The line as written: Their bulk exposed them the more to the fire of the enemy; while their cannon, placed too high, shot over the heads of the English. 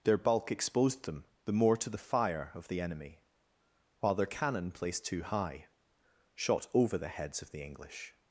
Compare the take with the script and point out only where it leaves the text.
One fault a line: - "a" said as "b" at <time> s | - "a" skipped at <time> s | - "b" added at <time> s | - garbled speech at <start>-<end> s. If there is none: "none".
none